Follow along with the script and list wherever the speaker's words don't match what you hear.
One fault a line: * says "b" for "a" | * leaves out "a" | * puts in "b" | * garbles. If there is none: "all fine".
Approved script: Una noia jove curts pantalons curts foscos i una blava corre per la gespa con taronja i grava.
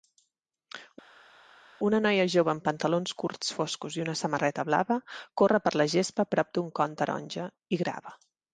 * says "amb" for "curts"
* puts in "samarreta"
* puts in "prop d"un"